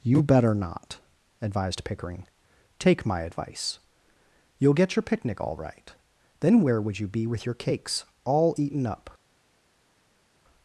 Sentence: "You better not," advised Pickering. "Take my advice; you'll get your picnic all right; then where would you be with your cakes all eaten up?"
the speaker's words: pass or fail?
pass